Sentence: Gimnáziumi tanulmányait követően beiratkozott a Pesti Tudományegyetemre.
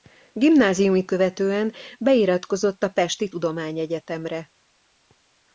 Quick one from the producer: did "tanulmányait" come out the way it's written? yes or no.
no